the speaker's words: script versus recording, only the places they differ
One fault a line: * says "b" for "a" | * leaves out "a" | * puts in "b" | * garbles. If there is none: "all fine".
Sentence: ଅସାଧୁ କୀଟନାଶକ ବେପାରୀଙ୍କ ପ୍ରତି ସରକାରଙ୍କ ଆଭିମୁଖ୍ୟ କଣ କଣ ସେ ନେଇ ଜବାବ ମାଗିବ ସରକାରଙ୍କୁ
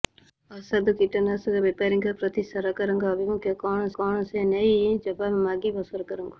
all fine